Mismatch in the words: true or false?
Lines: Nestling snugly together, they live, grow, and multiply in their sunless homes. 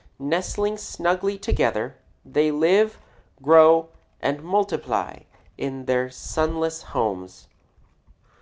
false